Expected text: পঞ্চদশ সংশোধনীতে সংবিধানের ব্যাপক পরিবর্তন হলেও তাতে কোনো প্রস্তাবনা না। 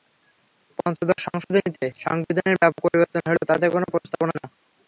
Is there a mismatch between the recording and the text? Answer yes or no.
no